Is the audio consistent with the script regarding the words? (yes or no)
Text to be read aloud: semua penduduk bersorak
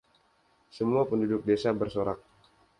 no